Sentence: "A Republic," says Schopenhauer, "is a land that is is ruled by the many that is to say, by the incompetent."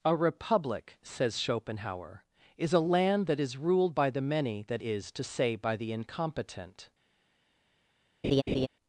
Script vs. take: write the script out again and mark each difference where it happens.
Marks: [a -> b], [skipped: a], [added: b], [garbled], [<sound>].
"A Republic," says Schopenhauer, "is a land that is [skipped: is] ruled by the many that is to say, by the incompetent." [laugh]